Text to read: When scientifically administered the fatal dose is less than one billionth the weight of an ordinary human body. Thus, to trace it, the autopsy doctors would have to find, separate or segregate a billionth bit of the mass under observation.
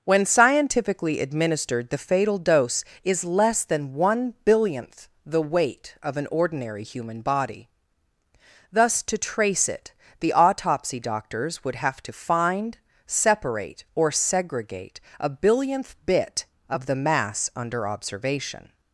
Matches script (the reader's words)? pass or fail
pass